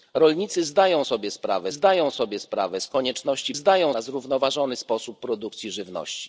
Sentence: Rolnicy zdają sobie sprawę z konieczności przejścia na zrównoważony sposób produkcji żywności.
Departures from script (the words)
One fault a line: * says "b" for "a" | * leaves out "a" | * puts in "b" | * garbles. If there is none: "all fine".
* puts in "zdają sobie sprawę"
* says "zdają" for "przejścia"